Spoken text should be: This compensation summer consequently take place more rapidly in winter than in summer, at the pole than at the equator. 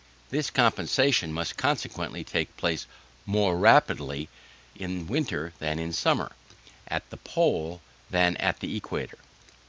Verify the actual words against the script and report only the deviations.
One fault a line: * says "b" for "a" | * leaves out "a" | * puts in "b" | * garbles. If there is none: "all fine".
* says "must" for "summer"